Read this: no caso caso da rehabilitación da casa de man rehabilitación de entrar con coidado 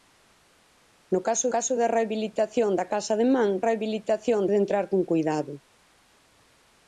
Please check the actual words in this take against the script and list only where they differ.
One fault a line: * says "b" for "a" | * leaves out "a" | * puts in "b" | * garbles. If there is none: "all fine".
all fine